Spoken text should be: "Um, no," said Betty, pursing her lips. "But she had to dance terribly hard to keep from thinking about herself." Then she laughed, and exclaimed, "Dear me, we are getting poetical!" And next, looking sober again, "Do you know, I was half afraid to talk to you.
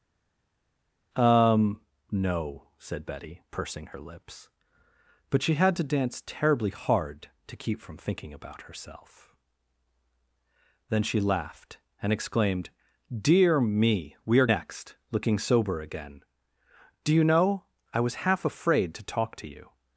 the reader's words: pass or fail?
fail